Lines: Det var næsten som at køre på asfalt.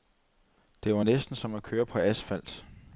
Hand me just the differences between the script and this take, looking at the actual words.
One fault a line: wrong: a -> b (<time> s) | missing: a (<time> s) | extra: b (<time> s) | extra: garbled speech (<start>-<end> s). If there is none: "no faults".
no faults